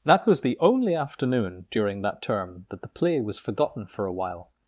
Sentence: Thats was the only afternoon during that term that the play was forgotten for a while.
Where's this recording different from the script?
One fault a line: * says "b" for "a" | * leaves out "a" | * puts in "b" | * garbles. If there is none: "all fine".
* says "That" for "Thats"